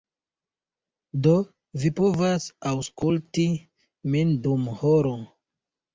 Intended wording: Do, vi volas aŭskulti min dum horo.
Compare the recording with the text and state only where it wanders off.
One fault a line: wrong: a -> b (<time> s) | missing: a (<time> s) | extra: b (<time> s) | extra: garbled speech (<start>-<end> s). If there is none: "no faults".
wrong: volas -> povas (2.0 s)